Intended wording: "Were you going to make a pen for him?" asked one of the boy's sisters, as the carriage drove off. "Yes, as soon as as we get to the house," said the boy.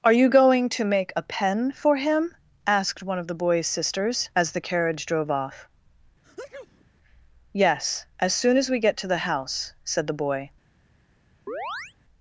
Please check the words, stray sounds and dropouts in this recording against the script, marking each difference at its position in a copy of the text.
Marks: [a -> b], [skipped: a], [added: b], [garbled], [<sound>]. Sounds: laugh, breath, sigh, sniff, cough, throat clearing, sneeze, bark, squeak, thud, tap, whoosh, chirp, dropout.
["Were -> Are] you going to make a pen for him?" asked one of the boy's sisters, as the carriage drove off. [sneeze] "Yes, as soon as [skipped: as] we get to the house," said the boy. [chirp]